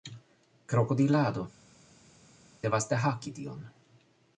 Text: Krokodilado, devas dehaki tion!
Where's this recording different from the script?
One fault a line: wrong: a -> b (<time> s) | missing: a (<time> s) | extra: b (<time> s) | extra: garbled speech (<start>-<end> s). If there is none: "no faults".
no faults